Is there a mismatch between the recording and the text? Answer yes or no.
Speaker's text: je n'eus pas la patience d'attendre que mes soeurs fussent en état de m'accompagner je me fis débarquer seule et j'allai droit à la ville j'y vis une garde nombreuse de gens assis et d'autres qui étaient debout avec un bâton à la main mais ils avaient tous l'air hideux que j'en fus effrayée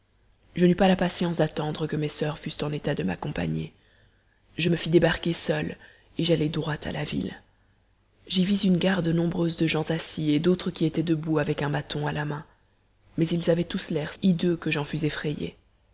no